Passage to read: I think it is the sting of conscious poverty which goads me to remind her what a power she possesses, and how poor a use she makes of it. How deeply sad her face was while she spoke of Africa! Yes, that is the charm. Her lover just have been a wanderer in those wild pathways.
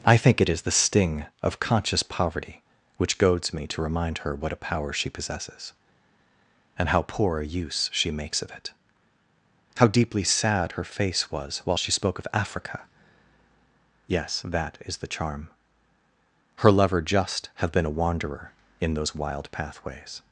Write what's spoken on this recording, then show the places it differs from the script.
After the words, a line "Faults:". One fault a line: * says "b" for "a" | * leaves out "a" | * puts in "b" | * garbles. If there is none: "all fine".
I think it is the sting of conscious poverty which goads me to remind her what a power she possesses, and how poor a use she makes of it. How deeply sad her face was while she spoke of Africa! Yes, that is the charm. Her lover just have been a wanderer in those wild pathways.
Faults:
all fine